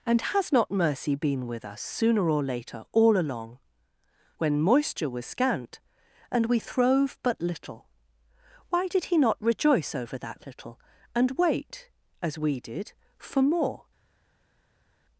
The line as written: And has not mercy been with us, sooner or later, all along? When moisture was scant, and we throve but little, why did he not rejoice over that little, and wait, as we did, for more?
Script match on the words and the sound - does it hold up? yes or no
yes